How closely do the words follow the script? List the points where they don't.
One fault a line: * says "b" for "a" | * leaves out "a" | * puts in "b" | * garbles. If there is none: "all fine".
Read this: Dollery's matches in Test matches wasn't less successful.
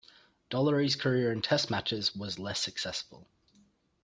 * says "career" for "matches"
* says "was" for "wasn't"